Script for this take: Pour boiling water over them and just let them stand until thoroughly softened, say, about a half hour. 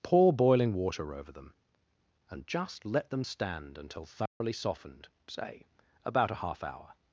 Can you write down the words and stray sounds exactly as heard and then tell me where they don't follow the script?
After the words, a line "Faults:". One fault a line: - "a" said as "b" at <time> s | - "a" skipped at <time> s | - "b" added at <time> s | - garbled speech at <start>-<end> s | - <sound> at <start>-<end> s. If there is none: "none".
Pour boiling water over them and just let them stand until thoroughly softened, say, about a half hour.
Faults:
- dropout at 4.3-4.4 s